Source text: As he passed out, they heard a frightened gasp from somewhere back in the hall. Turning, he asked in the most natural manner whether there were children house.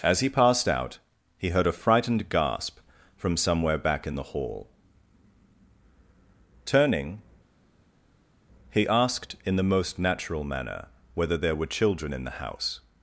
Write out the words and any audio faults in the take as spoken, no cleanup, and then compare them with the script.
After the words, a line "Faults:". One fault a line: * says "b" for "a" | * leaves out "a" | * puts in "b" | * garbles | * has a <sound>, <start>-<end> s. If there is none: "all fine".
As he passed out, he heard a frightened gasp from somewhere back in the hall. Turning, he asked in the most natural manner whether there were children in the house.
Faults:
* says "he" for "they"
* puts in "in the"